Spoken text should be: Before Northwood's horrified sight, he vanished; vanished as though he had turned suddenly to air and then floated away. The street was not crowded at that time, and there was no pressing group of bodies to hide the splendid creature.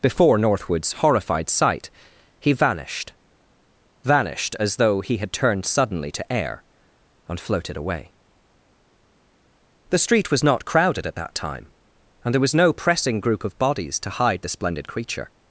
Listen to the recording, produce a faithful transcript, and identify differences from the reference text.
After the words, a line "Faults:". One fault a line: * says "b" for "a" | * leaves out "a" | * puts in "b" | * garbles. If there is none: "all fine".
Before Northwood's horrified sight, he vanished; vanished as though he had turned suddenly to air and floated away. The street was not crowded at that time, and there was no pressing group of bodies to hide the splendid creature.
Faults:
* leaves out "then"